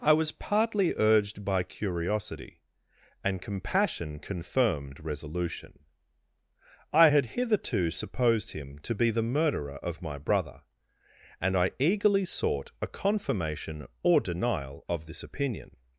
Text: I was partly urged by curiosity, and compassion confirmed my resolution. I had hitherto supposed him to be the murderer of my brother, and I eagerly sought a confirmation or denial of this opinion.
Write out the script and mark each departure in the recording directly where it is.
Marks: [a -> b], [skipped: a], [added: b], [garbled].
I was partly urged by curiosity, and compassion confirmed [skipped: my] resolution. I had hitherto supposed him to be the murderer of my brother, and I eagerly sought a confirmation or denial of this opinion.